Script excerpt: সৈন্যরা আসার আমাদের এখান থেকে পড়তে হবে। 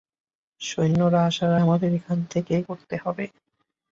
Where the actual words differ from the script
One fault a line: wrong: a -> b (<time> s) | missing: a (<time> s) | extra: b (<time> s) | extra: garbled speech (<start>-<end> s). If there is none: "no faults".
no faults